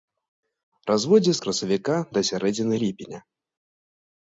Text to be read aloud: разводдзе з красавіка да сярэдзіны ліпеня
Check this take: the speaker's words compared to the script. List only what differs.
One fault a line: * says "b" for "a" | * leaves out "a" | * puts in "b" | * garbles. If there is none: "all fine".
all fine